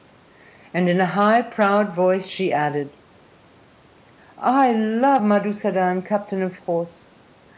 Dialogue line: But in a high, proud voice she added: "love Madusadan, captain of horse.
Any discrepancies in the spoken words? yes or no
yes